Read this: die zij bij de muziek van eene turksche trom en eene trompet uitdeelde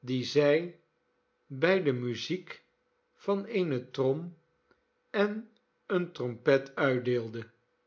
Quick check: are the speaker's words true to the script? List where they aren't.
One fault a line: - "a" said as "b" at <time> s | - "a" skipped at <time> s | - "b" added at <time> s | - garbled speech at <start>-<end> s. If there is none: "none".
- "turksche" skipped at 3.9 s